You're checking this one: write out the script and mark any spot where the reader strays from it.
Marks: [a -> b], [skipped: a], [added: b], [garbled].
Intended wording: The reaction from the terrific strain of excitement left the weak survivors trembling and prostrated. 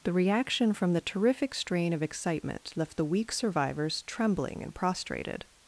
The reaction from the terrific strain of excitement left the weak survivors trembling and prostrated.